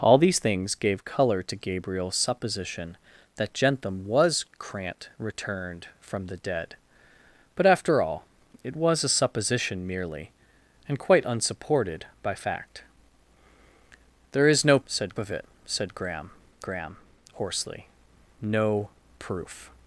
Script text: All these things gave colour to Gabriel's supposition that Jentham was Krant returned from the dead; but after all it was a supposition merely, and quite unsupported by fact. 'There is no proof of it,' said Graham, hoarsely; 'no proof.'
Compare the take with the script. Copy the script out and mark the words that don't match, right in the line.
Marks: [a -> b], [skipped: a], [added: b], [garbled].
All these things gave colour to Gabriel's supposition that Jentham was Krant returned from the dead; but after all it was a supposition merely, and quite unsupported by fact. 'There is no [proof -> said] of it,' said Graham, [added: Graham] hoarsely; 'no proof.'